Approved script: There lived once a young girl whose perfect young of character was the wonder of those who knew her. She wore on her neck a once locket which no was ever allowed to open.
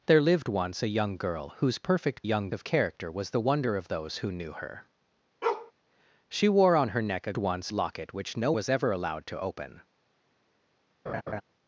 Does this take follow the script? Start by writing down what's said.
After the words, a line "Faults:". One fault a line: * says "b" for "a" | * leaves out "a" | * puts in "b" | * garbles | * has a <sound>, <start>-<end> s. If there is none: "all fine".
There lived once a young girl whose perfect young of character was the wonder of those who knew her. She wore on her neck a once locket which no was ever allowed to open.
Faults:
* has a bark, 5.4-5.7 s
* has a laugh, 11.1-11.4 s